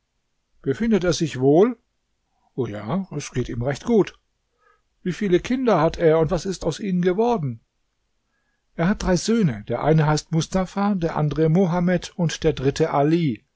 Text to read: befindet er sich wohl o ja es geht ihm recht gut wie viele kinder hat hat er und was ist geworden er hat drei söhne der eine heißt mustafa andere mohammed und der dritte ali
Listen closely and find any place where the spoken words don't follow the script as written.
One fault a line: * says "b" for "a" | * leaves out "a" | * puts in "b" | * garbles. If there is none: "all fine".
* leaves out "hat"
* puts in "aus ihnen"
* puts in "der"